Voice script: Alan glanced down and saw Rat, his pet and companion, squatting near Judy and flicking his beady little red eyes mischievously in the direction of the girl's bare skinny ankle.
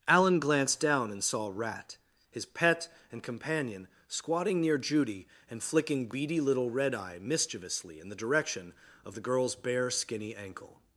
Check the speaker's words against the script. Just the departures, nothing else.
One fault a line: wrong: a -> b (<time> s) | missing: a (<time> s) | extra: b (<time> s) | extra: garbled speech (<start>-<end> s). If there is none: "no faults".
missing: his (6.1 s)
wrong: eyes -> eye (6.9 s)